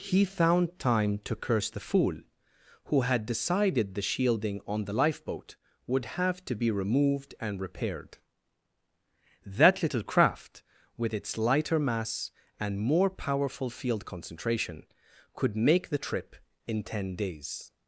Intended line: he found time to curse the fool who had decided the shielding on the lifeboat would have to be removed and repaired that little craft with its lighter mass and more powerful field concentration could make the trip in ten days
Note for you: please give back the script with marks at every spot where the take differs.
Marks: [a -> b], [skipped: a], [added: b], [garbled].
he found time to curse the fool who had decided the shielding on the lifeboat would have to be removed and repaired that little craft with its lighter mass and more powerful field concentration could make the trip in ten days